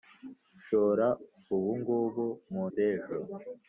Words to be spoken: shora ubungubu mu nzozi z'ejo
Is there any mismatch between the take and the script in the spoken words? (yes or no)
yes